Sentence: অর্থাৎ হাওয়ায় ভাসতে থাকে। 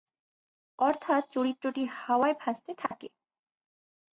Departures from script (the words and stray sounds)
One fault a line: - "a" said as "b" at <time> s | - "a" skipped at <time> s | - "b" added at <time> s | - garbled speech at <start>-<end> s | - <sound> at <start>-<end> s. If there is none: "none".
- "চরিত্রটি" added at 1.3 s
- dropout at 2.9-2.9 s